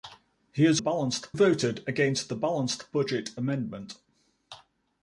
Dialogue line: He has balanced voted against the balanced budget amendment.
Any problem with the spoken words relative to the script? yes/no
no